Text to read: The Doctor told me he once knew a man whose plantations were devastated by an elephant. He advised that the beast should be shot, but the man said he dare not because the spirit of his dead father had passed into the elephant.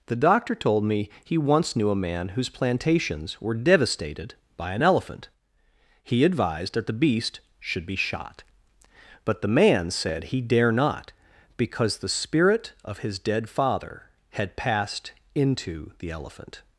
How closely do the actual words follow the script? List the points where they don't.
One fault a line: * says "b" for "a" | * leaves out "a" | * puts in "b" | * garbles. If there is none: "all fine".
all fine